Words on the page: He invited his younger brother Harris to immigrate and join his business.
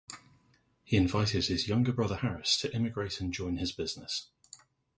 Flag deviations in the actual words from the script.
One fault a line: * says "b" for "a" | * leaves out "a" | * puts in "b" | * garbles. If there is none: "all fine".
all fine